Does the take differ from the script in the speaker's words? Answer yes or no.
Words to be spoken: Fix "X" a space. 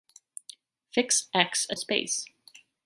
no